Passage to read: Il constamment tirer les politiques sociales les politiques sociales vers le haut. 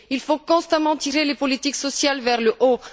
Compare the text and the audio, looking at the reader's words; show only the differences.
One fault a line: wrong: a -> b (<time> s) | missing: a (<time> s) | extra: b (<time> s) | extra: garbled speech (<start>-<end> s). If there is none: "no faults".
extra: faut (0.2 s)
missing: les politiques sociales (2.2 s)